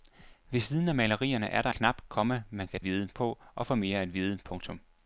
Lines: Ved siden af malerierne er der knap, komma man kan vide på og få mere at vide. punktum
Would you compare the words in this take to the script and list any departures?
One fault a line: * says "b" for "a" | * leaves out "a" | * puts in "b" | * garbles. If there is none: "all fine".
all fine